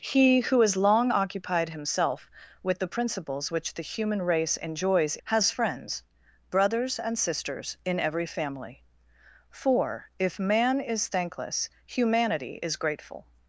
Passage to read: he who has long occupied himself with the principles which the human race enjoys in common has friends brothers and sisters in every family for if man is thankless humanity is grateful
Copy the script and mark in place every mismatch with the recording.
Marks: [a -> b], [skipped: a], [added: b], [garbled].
he who has long occupied himself with the principles which the human race enjoys [skipped: in common] has friends brothers and sisters in every family for if man is thankless humanity is grateful